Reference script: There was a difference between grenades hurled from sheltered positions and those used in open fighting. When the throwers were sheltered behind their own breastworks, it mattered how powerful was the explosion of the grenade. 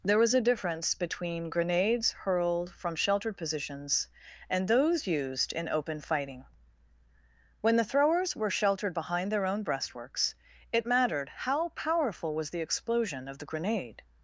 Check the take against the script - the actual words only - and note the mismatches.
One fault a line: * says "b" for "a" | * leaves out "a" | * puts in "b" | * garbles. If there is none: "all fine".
all fine